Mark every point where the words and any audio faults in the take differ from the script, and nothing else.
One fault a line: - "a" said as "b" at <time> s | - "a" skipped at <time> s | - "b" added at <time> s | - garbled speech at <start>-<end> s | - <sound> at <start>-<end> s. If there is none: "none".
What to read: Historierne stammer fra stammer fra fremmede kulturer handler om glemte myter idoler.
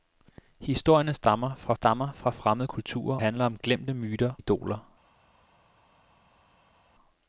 none